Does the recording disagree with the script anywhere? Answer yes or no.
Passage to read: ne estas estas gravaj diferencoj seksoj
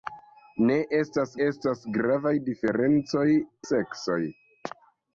no